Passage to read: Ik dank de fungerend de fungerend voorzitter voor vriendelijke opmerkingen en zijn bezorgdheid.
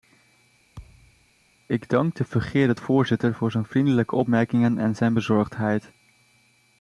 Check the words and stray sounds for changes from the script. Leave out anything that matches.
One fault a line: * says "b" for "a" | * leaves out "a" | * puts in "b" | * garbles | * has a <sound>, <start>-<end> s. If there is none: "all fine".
* has a thud, 0.8-1.3 s
* leaves out "de fungerend"
* puts in "zijn"